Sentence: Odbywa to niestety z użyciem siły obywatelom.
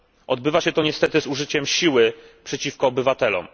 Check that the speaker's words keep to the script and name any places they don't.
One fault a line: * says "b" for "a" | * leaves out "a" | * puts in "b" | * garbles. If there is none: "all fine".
* puts in "się"
* puts in "przeciwko"